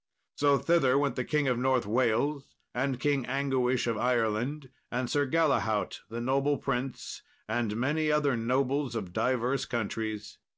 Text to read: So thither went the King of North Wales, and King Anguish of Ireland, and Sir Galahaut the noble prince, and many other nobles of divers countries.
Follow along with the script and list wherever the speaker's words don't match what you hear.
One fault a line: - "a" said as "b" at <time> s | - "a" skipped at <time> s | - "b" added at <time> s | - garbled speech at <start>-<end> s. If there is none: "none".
none